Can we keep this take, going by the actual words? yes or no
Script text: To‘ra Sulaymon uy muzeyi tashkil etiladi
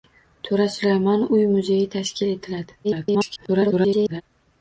no